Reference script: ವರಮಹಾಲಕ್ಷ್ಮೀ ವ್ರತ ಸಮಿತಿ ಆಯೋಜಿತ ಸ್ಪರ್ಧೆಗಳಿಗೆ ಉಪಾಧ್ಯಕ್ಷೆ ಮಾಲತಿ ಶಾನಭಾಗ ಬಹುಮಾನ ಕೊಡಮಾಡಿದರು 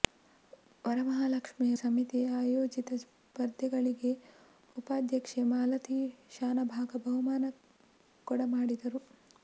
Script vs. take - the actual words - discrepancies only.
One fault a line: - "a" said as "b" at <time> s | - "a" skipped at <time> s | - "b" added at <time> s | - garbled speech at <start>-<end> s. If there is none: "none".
- "ವ್ರತ" skipped at 1.7 s